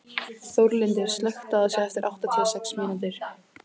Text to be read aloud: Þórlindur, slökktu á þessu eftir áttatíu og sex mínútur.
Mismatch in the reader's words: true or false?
false